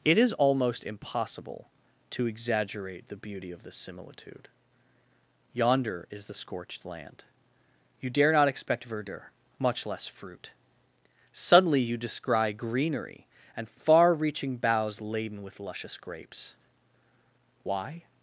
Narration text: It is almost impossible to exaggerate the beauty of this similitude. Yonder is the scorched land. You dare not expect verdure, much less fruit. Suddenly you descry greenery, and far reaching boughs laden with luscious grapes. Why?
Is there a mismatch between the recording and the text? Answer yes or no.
no